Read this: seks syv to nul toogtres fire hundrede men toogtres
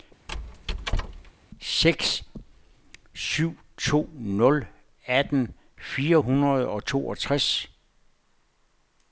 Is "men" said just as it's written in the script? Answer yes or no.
no